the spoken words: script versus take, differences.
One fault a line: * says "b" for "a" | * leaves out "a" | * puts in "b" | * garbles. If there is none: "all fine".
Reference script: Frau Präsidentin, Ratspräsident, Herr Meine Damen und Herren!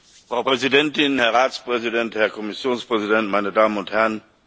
* puts in "Herr"
* puts in "Kommissionspräsident"